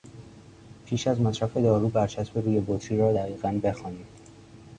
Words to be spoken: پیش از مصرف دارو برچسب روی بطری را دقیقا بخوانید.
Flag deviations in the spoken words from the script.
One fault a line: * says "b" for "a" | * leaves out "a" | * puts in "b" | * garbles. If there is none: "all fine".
all fine